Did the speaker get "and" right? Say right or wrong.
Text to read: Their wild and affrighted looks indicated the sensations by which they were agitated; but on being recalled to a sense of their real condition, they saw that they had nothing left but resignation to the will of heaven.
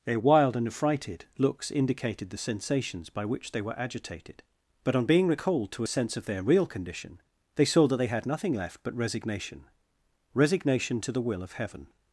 right